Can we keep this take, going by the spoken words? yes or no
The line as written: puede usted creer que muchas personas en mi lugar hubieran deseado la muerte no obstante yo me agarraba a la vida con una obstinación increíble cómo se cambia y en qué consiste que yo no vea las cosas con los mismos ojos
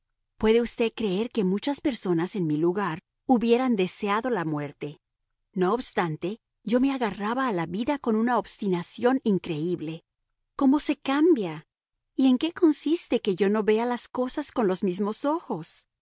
yes